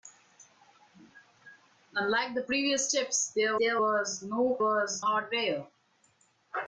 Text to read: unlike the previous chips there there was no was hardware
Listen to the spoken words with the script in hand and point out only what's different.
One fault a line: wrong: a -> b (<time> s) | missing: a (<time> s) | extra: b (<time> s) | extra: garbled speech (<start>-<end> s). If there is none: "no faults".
no faults